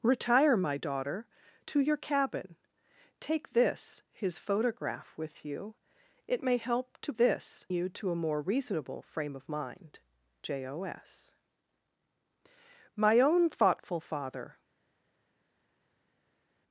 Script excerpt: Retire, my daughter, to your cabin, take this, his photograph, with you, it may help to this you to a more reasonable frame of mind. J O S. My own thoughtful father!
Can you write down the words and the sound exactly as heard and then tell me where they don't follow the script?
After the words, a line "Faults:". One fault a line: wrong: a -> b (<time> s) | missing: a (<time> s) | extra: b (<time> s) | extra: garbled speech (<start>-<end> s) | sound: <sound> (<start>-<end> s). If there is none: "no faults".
Retire, my daughter, to your cabin, take this, his photograph, with you, it may help to this you to a more reasonable frame of mind. J O S. My own thoughtful father!
Faults:
no faults